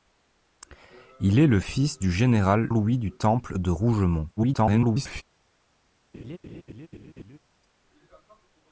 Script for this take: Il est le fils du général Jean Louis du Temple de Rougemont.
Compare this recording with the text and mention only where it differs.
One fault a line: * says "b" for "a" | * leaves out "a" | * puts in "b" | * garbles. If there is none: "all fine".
* leaves out "Jean"
* garbles